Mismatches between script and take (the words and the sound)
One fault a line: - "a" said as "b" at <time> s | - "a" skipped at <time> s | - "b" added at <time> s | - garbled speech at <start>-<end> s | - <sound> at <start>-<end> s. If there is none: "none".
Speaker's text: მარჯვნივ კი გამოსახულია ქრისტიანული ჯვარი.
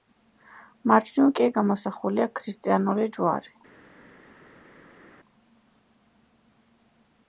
none